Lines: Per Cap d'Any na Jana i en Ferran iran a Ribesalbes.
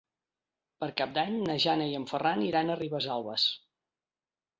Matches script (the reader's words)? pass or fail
pass